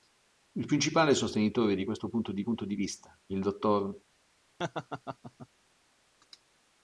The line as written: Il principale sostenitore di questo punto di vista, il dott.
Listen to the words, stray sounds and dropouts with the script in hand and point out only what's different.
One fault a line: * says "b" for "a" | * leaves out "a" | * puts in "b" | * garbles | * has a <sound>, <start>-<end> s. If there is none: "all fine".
* puts in "punto di"
* has a laugh, 4.6-5.5 s